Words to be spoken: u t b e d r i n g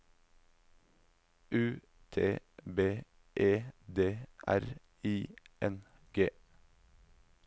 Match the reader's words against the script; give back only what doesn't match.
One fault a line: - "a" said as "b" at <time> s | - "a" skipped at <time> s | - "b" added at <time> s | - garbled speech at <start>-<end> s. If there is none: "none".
none